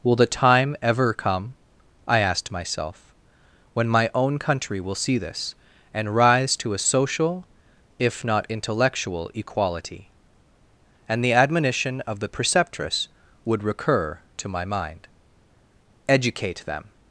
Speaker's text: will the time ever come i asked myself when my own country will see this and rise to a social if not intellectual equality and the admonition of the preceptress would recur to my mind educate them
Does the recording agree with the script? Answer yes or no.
yes